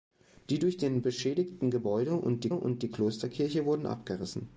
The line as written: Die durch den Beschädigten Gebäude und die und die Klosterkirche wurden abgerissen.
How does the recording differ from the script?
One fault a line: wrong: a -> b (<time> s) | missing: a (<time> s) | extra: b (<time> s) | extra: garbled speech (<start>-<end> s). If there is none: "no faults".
no faults